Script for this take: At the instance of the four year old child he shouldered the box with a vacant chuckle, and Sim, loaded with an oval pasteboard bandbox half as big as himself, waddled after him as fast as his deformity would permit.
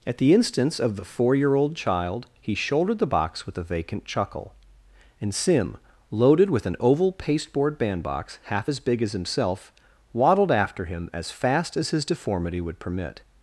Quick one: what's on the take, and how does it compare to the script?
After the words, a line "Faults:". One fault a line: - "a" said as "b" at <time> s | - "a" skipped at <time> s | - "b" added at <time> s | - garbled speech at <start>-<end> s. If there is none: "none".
At the instance of the four year old child he shouldered the box with a vacant chuckle, and Sim, loaded with an oval pasteboard bandbox half as big as himself, waddled after him as fast as his deformity would permit.
Faults:
none